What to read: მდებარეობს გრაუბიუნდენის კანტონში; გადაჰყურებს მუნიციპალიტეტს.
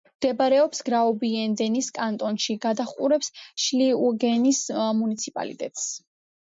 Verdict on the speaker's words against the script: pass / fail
fail